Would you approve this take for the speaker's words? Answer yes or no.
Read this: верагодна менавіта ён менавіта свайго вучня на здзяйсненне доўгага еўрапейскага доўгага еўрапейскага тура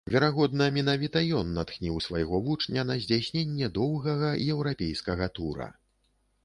no